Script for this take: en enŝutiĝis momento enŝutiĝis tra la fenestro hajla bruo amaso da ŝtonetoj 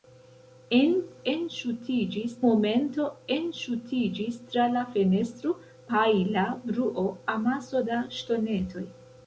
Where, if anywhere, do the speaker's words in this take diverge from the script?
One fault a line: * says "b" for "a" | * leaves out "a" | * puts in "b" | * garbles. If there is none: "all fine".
all fine